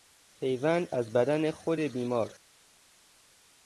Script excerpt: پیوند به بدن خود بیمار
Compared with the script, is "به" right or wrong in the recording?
wrong